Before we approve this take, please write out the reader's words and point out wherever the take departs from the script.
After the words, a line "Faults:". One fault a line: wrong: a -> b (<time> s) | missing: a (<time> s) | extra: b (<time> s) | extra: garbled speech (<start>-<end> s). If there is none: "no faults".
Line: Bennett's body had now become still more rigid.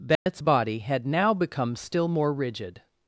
Bennett's body had now become still more rigid.
Faults:
no faults